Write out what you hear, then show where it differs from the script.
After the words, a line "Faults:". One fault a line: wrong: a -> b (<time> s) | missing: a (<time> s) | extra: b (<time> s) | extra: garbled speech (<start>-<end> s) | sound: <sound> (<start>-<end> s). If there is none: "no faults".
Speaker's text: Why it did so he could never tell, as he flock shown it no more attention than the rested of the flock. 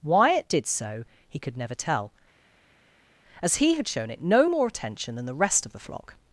Why it did so he could never tell, as he had shown it no more attention than the rest of the flock.
Faults:
wrong: flock -> had (3.7 s)
wrong: rested -> rest (5.3 s)